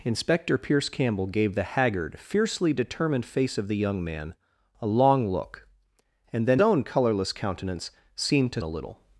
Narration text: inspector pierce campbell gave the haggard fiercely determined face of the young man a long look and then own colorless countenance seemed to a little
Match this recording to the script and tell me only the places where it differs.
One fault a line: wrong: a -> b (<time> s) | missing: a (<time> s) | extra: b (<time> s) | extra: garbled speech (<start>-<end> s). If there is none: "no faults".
no faults